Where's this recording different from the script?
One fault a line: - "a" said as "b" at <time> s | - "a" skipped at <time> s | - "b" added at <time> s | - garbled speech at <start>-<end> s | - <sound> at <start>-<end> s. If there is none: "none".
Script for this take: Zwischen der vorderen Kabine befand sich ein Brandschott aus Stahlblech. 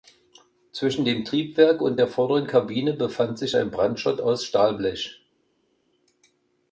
- "dem Triebwerk und" added at 1.1 s